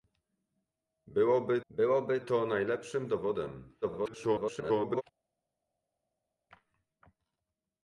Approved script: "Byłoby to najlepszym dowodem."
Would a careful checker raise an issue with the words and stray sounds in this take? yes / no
yes